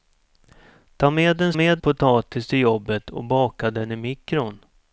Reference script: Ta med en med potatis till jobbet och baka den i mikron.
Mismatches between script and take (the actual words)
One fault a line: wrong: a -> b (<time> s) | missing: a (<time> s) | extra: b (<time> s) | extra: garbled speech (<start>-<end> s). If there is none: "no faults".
no faults